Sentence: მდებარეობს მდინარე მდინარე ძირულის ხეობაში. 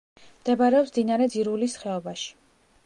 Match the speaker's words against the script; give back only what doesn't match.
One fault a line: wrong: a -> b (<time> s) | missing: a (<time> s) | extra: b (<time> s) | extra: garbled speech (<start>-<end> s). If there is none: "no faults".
missing: მდინარე (1.3 s)